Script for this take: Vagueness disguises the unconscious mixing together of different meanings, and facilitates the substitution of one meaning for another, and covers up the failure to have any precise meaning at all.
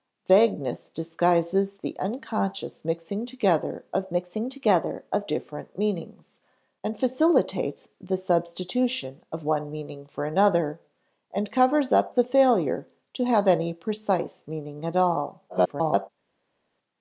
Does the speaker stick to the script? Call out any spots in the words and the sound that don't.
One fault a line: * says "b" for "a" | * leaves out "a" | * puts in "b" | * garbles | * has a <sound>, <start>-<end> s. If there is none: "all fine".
* puts in "mixing together of"
* garbles